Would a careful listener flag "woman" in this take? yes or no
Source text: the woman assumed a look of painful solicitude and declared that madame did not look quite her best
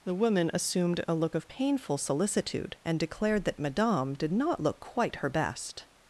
no